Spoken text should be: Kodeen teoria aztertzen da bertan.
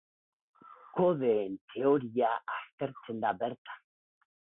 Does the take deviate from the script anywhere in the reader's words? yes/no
no